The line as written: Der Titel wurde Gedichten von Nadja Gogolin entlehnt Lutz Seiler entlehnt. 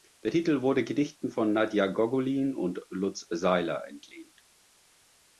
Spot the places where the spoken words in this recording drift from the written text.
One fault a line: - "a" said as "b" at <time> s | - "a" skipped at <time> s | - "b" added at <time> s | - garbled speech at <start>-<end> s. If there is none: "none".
- "entlehnt" said as "und" at 2.5 s